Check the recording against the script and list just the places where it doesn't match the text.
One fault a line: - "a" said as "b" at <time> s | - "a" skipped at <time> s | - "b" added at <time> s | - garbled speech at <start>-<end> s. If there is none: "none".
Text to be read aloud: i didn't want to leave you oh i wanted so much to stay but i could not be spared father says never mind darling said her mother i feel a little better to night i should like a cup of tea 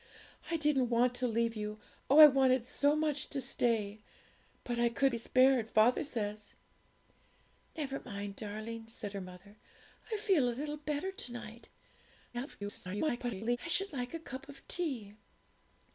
- "not" skipped at 5.1 s
- garbled speech at 12.3-13.6 s